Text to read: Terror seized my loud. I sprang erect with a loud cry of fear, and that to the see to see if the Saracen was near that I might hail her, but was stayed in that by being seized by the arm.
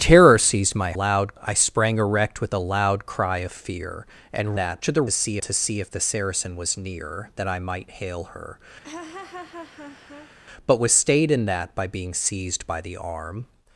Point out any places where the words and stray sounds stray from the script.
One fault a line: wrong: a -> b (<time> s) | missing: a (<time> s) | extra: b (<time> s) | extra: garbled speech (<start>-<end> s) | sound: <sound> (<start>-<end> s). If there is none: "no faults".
sound: laugh (8.8-10.3 s)